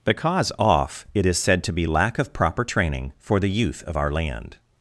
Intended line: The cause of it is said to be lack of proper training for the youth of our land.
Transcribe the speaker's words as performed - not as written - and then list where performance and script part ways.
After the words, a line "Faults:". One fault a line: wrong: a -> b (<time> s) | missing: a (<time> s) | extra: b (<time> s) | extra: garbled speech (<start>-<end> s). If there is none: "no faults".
The cause off it is said to be lack of proper training for the youth of our land.
Faults:
wrong: of -> off (0.6 s)